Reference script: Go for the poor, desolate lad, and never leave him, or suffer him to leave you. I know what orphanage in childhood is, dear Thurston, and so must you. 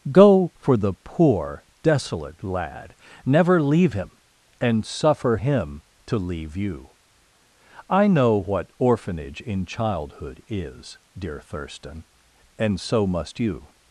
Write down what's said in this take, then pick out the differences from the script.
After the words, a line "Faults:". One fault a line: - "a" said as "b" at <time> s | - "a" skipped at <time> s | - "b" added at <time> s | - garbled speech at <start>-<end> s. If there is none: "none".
Go for the poor, desolate lad, never leave him, and suffer him to leave you. I know what orphanage in childhood is, dear Thurston, and so must you.
Faults:
- "and" skipped at 3.0 s
- "or" said as "and" at 4.6 s